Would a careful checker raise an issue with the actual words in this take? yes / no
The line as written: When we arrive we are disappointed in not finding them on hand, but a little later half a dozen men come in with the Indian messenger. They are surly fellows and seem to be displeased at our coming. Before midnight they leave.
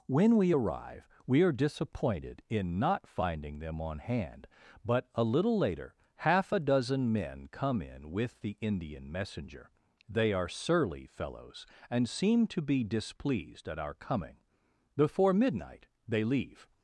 no